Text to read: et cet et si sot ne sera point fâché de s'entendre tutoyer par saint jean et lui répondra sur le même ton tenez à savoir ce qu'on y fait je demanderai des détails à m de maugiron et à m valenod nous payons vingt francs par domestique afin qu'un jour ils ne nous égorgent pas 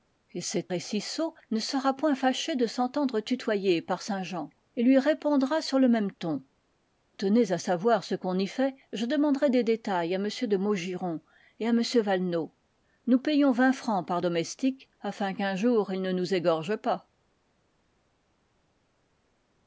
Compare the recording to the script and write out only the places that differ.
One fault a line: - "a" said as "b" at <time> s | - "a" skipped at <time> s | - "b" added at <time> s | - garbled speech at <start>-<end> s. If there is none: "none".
none